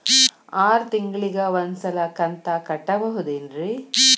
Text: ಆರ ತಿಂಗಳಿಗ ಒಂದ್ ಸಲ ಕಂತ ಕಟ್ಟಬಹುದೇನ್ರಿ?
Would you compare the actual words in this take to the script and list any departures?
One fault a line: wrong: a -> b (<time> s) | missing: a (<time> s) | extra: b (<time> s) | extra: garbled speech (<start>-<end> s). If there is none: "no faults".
no faults